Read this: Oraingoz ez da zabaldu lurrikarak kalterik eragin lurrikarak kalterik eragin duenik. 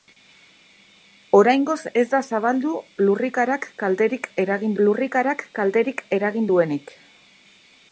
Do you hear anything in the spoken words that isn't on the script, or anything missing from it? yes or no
no